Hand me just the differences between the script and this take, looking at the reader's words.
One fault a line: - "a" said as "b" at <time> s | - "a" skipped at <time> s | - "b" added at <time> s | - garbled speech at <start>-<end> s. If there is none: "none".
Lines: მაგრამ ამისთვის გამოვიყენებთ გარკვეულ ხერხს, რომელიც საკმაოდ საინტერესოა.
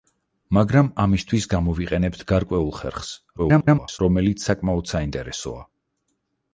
- garbled speech at 3.4-4.0 s